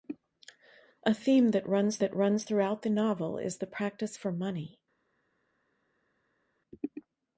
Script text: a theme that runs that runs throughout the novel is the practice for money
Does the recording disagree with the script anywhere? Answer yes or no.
no